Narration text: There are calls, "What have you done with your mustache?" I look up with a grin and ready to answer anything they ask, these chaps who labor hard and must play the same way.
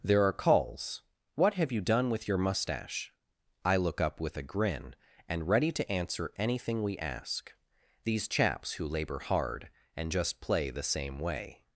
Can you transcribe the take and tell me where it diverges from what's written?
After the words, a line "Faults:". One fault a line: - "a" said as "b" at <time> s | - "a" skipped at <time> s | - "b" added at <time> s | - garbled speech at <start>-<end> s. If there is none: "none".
There are calls, "What have you done with your mustache?" I look up with a grin and ready to answer anything we ask, these chaps who labor hard and just play the same way.
Faults:
- "they" said as "we" at 6.8 s
- "must" said as "just" at 10.1 s